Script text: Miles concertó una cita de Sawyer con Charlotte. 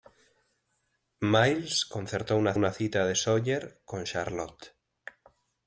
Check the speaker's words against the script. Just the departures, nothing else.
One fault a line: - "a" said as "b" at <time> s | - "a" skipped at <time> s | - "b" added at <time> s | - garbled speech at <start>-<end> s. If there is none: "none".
- "una" added at 2.5 s